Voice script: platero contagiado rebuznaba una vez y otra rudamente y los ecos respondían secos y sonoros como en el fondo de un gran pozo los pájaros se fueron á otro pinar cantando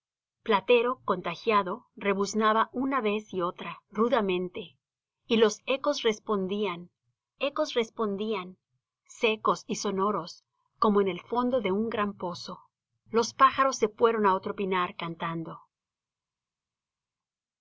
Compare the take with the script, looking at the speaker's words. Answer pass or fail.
fail